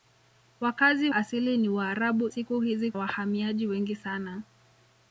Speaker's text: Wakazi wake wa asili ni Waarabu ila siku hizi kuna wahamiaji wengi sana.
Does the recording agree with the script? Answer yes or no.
no